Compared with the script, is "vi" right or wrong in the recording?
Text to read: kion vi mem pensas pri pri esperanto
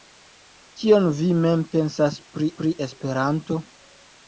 right